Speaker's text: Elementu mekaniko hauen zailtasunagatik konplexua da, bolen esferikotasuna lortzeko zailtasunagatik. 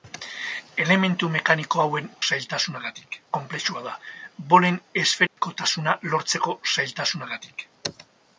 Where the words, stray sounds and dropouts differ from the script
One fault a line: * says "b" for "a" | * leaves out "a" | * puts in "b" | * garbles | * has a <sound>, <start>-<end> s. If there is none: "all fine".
* has a dropout, 5.3-5.4 s